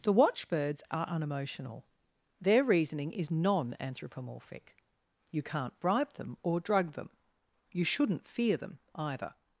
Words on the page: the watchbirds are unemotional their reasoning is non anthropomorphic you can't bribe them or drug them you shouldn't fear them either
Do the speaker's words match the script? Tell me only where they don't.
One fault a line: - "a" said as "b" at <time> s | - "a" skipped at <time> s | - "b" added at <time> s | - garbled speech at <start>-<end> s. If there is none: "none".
none